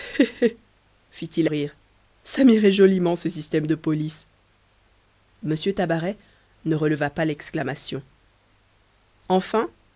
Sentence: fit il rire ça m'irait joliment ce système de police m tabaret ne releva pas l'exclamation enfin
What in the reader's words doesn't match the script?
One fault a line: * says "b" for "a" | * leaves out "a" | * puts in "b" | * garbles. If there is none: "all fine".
all fine